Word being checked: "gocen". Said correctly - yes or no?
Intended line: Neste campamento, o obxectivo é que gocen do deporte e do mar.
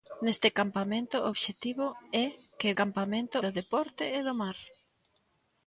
no